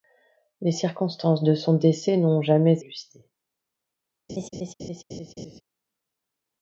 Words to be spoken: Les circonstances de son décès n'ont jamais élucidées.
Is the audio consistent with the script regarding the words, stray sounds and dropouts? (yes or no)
no